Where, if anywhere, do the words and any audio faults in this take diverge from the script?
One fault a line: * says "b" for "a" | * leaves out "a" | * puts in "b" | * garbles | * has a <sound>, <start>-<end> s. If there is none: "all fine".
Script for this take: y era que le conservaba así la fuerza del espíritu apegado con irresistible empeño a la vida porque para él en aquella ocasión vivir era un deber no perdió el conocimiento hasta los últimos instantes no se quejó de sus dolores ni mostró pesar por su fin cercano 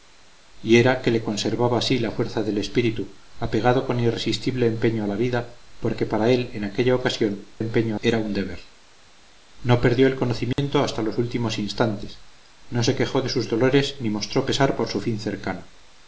* says "empeño" for "vivir"
* has a dropout, 10.5-10.6 s